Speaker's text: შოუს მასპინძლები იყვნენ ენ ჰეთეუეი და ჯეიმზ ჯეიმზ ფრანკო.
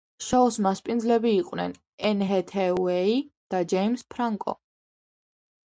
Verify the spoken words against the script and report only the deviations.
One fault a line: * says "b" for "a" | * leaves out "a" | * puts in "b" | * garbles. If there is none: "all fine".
* leaves out "ჯეიმზ"